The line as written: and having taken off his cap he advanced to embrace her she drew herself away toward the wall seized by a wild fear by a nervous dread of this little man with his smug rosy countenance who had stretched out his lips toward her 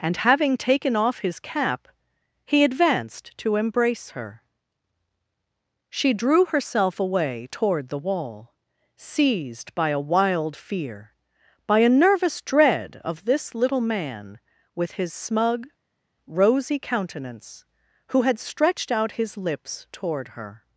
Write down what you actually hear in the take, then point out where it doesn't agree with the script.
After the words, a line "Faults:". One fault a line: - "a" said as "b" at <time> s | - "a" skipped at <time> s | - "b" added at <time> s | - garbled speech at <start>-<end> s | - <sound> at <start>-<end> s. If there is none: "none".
and having taken off his cap he advanced to embrace her she drew herself away toward the wall seized by a wild fear by a nervous dread of this little man with his smug rosy countenance who had stretched out his lips toward her
Faults:
none